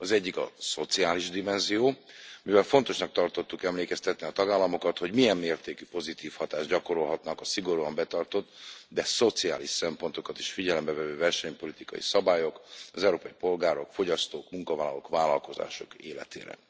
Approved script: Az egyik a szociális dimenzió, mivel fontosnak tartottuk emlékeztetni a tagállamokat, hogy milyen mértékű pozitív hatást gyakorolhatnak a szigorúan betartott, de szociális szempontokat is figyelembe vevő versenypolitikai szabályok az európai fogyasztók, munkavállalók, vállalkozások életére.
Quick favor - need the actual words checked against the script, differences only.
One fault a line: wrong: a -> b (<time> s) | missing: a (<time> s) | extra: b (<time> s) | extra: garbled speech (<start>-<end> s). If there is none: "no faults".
extra: polgárok (13.4 s)